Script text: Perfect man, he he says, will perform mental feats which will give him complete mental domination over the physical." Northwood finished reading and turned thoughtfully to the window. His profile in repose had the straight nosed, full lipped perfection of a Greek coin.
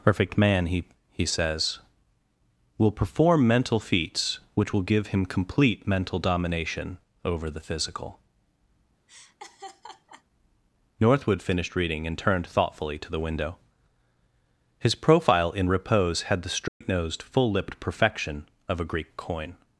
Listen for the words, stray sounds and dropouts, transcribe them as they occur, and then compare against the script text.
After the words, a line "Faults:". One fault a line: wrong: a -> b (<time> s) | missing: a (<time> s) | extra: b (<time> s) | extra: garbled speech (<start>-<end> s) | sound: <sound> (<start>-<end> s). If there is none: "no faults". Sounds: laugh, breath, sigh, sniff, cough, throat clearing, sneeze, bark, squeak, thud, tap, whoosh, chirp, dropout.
Perfect man, he he says, will perform mental feats which will give him complete mental domination over the physical." Northwood finished reading and turned thoughtfully to the window. His profile in repose had the straight nosed, full lipped perfection of a Greek coin.
Faults:
sound: laugh (9.1-10.2 s)
sound: dropout (16.7-16.8 s)